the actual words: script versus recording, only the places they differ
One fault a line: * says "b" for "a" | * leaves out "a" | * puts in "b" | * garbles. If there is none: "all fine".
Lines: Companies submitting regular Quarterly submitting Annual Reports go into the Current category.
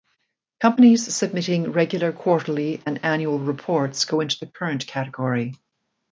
* says "and" for "submitting"